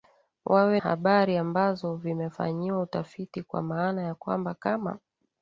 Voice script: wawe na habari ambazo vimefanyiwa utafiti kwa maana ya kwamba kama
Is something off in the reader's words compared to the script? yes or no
yes